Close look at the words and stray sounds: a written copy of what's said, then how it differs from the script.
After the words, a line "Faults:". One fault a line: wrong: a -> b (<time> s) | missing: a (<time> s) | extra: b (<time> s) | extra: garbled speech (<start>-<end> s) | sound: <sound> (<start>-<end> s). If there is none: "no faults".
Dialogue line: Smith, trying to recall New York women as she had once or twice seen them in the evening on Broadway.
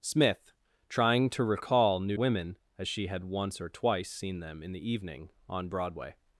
Smith, trying to recall New Women as she had once or twice seen them in the evening on Broadway.
Faults:
missing: York (2.2 s)